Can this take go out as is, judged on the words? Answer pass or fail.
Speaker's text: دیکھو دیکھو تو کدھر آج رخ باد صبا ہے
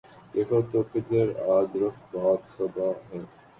fail